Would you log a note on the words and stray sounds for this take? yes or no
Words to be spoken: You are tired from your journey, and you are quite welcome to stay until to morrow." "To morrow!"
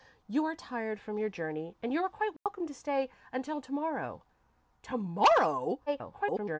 yes